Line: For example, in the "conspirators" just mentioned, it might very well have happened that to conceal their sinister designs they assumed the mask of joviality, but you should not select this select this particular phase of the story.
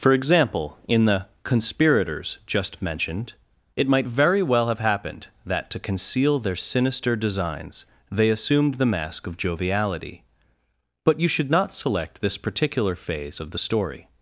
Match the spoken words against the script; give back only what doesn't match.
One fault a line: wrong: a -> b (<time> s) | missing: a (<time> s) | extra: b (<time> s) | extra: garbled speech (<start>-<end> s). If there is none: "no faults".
missing: select this (12.4 s)